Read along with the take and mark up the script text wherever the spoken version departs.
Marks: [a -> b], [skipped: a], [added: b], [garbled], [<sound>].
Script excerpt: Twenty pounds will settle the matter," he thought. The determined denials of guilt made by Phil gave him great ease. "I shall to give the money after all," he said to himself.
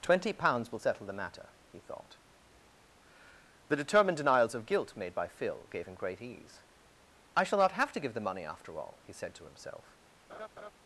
Twenty pounds will settle the matter," he thought. The determined denials of guilt made by Phil gave him great ease. "I shall [added: not have] to give the money after all," he said to himself. [laugh]